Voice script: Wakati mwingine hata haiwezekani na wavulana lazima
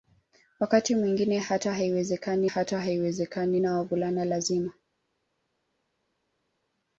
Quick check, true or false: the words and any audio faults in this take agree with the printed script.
false